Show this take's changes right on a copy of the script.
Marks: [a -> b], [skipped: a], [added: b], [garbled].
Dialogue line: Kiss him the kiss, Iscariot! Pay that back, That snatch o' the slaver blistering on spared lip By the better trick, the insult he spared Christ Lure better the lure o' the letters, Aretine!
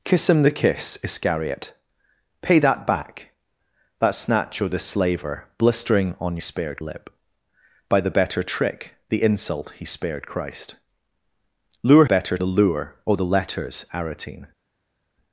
Kiss him the kiss, Iscariot! Pay that back, That snatch o' the slaver blistering on spared lip By the better trick, the insult he spared Christ Lure better the lure o' the letters, Aretine!